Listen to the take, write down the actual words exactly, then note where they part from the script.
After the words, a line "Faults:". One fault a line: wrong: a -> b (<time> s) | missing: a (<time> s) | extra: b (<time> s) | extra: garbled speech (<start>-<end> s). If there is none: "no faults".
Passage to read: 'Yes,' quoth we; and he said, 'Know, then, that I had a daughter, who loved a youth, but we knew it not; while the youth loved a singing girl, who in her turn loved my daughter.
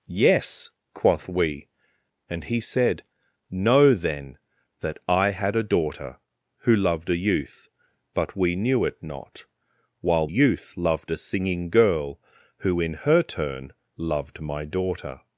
'Yes,' quoth we; and he said, 'Know, then, that I had a daughter, who loved a youth, but we knew it not; while youth loved a singing girl, who in her turn loved my daughter.
Faults:
missing: the (10.3 s)